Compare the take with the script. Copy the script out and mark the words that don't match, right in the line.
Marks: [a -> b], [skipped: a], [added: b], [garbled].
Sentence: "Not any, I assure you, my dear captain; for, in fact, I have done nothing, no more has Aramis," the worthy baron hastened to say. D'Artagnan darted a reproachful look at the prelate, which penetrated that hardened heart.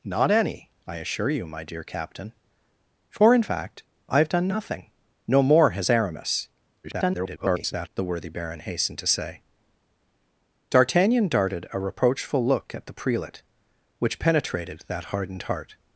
"Not any, I assure you, my dear captain; for, in fact, I have done nothing, no more has Aramis," [garbled] the worthy baron hastened to say. D'Artagnan darted a reproachful look at the prelate, which penetrated that hardened heart.